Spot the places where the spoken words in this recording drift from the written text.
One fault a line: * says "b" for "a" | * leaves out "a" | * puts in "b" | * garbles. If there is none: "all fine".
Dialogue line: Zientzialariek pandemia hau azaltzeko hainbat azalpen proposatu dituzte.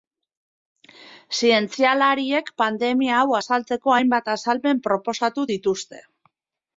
all fine